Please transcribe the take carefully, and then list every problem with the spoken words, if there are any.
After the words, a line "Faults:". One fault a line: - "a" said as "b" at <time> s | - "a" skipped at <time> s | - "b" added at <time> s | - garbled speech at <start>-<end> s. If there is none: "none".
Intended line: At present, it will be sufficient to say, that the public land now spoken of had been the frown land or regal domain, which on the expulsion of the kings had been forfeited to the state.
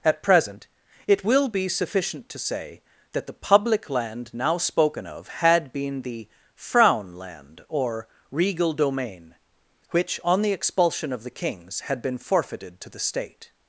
At present, it will be sufficient to say, that the public land now spoken of had been the frown land or regal domain, which on the expulsion of the kings had been forfeited to the state.
Faults:
none